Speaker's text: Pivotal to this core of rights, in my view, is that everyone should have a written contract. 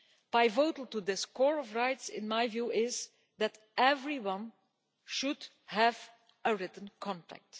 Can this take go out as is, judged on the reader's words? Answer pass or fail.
pass